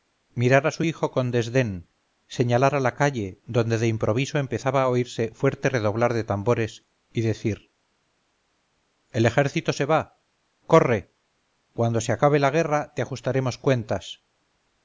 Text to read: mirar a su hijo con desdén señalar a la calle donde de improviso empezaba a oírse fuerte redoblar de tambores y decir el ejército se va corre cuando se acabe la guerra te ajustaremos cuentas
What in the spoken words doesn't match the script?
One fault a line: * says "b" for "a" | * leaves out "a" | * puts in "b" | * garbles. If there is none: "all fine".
all fine